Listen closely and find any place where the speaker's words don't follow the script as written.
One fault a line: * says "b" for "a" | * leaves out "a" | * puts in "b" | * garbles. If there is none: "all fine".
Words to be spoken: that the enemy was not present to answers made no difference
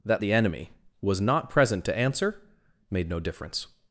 * says "answer" for "answers"